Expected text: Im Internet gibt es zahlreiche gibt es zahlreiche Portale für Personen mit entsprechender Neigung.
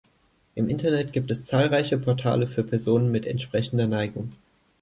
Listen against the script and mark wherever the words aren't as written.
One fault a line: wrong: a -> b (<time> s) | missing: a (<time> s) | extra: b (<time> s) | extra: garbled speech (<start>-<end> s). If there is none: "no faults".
missing: gibt es zahlreiche (2.0 s)